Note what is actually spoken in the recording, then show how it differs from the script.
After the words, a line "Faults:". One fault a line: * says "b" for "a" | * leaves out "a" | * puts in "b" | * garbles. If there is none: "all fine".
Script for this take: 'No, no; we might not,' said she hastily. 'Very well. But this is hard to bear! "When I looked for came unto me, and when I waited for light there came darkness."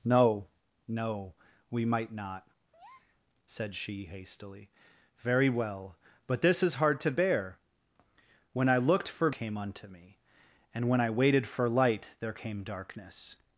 'No, no; we might not,' said she hastily. 'Very well. But this is hard to bear! "When I looked for came unto me, and when I waited for light there came darkness."
Faults:
all fine